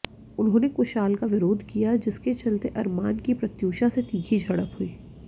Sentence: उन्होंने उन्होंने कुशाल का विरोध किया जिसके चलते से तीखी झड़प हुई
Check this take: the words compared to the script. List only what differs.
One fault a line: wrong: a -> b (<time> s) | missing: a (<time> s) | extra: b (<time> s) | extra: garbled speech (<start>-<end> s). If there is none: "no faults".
missing: उन्होंने (0.7 s)
extra: अरमान की प्रत्यूषा (2.8 s)